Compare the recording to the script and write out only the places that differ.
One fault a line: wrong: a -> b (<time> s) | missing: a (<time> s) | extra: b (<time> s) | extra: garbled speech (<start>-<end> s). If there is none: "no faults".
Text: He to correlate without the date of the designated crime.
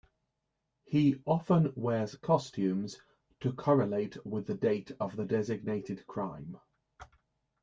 extra: often wears costumes (1.3 s)
wrong: without -> with (4.3 s)